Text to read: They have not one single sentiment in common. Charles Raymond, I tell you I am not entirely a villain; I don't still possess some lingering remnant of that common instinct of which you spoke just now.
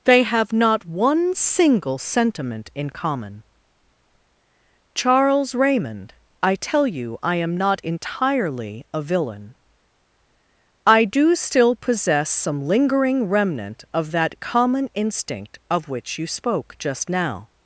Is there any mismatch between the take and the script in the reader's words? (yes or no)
yes